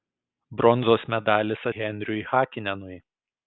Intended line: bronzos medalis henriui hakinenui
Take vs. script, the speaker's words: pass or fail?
pass